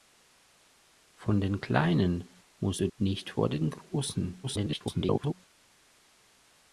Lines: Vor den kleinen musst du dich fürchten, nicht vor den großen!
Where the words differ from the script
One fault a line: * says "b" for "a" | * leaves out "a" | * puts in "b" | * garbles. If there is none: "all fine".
* leaves out "dich fürchten"
* garbles